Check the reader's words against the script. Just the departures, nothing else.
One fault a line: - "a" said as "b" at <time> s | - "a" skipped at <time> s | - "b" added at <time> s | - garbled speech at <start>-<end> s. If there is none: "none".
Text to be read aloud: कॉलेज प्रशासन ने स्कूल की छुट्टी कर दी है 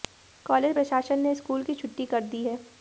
none